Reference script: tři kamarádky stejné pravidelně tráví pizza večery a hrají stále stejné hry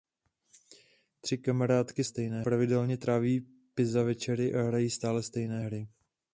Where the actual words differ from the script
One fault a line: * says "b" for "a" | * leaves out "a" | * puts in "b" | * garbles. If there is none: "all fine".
all fine